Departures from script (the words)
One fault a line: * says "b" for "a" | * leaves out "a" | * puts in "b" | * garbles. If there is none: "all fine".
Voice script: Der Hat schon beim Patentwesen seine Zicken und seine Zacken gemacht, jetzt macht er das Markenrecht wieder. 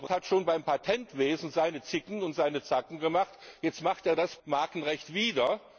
all fine